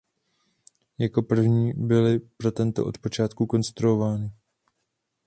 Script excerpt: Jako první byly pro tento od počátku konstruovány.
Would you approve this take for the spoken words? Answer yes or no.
yes